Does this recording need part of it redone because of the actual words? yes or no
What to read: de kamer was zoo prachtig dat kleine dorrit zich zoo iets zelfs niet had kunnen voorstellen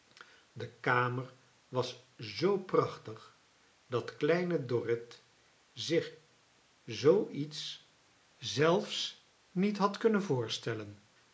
no